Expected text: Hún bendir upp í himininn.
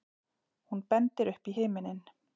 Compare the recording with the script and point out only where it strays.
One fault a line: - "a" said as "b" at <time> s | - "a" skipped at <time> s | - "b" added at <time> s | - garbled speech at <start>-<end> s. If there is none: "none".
none